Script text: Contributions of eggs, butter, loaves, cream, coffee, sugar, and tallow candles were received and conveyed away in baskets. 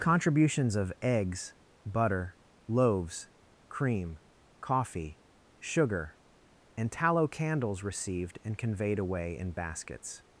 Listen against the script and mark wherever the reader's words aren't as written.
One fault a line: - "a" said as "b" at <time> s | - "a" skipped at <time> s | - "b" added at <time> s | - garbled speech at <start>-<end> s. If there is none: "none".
- "were" skipped at 7.8 s